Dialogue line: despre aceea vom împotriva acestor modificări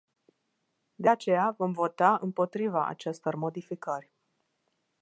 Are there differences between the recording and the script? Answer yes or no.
yes